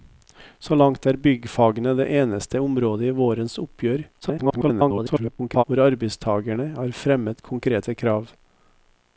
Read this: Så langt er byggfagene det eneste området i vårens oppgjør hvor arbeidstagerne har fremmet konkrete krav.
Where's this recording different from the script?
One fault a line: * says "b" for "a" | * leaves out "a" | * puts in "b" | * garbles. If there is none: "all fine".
* garbles